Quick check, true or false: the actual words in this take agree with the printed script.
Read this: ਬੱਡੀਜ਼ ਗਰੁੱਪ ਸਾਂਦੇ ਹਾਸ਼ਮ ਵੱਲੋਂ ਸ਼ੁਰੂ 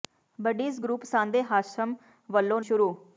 true